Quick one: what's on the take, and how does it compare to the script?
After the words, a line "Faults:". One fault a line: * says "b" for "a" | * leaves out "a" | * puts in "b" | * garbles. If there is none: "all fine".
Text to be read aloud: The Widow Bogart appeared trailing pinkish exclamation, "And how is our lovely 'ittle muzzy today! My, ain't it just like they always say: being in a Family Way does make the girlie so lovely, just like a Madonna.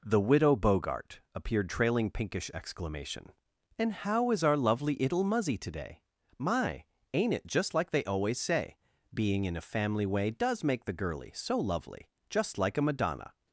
The Widow Bogart appeared trailing pinkish exclamation, "And how is our lovely 'ittle muzzy today! My, ain't it just like they always say: being in a Family Way does make the girlie so lovely, just like a Madonna.
Faults:
all fine